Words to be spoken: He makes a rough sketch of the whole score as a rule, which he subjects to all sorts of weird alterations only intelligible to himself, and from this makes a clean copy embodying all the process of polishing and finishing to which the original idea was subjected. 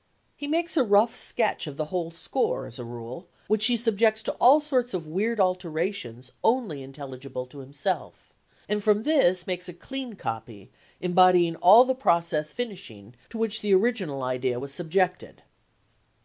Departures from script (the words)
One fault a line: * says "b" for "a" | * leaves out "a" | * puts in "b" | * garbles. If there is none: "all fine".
* leaves out "of polishing and"